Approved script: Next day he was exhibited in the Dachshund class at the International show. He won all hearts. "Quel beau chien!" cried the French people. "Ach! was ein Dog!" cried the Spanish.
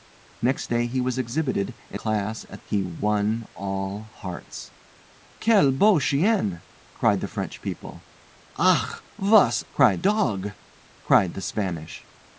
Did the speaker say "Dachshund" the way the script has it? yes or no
no